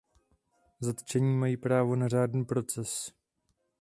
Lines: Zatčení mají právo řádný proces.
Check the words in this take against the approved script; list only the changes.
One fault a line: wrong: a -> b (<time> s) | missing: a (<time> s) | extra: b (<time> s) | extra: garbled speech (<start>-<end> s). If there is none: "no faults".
extra: na (1.9 s)